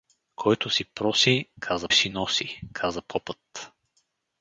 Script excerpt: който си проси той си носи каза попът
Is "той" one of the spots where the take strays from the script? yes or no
yes